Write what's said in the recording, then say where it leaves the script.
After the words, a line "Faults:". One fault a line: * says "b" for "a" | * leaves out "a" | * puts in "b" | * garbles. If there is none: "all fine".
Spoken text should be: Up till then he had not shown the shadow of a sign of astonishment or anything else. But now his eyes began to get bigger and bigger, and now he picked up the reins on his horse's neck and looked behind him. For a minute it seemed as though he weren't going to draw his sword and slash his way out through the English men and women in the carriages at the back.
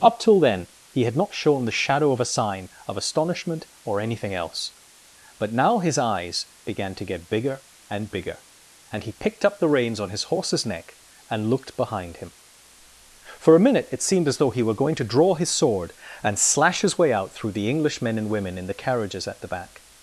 Up till then he had not shown the shadow of a sign of astonishment or anything else. But now his eyes began to get bigger and bigger, and he picked up the reins on his horse's neck and looked behind him. For a minute it seemed as though he were going to draw his sword and slash his way out through the English men and women in the carriages at the back.
Faults:
* leaves out "now"
* says "were" for "weren't"